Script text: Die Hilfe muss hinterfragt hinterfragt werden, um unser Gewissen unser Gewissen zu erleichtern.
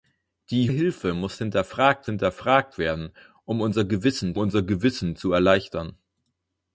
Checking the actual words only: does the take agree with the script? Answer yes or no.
yes